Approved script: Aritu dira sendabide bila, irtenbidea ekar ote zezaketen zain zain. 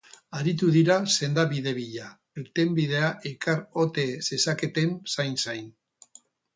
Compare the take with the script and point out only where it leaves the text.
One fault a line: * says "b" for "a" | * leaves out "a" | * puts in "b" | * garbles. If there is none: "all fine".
all fine